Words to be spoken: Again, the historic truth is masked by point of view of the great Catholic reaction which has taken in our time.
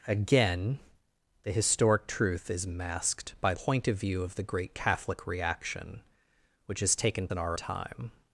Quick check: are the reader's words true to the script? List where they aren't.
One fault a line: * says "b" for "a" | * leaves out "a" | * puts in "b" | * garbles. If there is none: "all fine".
all fine